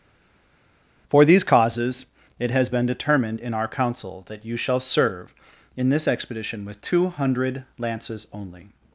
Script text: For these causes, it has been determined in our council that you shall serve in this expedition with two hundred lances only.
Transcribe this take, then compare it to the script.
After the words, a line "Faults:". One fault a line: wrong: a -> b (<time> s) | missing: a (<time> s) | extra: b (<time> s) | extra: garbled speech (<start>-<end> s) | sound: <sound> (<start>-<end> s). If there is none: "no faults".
For these causes, it has been determined in our council that you shall serve in this expedition with two hundred lances only.
Faults:
no faults